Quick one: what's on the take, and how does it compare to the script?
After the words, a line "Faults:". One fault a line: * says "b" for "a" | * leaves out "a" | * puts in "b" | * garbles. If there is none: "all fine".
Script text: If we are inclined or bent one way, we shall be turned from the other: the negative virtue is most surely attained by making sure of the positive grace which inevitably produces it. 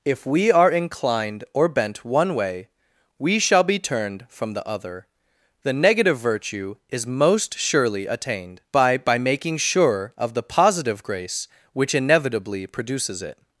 If we are inclined or bent one way, we shall be turned from the other: the negative virtue is most surely attained by by making sure of the positive grace which inevitably produces it.
Faults:
* puts in "by"